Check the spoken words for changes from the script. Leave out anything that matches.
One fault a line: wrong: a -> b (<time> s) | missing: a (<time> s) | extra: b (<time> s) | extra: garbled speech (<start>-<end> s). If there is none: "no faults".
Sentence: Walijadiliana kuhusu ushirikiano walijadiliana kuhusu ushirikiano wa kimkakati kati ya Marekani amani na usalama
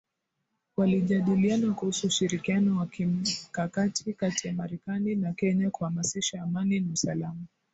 missing: walijadiliana kuhusu ushirikiano (2.8 s)
extra: na Kenya kuhamasisha (5.2 s)